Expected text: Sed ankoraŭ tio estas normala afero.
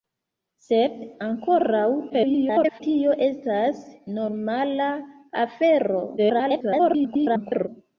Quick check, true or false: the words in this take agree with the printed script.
false